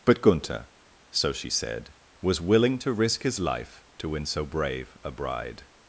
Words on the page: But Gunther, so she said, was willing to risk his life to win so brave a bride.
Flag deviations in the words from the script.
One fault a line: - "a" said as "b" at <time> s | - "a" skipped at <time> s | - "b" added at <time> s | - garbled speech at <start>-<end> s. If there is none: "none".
none